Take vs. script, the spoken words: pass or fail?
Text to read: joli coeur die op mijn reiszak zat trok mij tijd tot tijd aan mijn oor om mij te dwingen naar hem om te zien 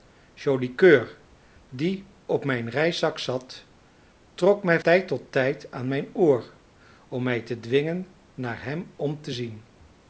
pass